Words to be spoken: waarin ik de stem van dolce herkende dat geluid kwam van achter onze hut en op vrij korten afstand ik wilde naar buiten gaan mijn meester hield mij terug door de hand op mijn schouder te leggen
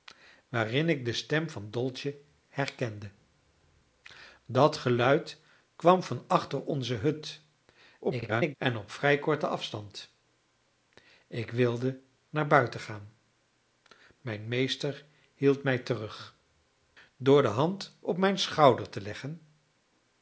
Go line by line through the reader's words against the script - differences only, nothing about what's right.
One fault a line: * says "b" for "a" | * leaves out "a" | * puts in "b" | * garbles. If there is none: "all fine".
* garbles